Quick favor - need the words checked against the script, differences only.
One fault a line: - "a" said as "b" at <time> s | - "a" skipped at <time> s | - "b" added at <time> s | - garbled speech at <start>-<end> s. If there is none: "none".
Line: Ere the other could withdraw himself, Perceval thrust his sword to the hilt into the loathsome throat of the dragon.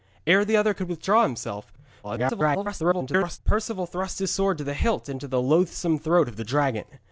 - garbled speech at 2.0-3.4 s